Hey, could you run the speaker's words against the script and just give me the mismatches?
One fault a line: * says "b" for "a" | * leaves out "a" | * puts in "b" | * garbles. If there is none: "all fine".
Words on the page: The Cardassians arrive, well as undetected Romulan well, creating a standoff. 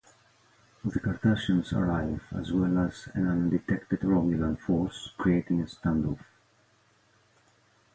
* puts in "as"
* puts in "an"
* says "force" for "well"